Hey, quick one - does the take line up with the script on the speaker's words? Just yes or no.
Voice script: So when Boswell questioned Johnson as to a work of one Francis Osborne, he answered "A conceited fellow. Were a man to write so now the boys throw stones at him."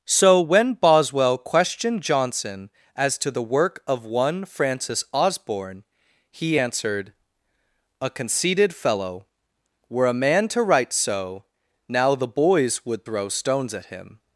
no